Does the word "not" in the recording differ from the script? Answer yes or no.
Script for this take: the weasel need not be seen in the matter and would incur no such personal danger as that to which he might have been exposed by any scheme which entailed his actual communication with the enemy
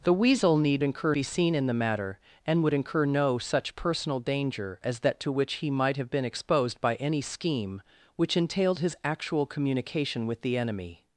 yes